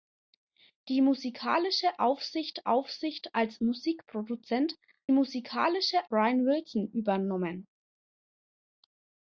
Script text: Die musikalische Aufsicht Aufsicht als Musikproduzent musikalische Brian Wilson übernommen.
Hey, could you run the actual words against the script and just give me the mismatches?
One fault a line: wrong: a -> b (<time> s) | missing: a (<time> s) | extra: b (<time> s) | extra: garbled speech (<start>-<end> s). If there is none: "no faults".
no faults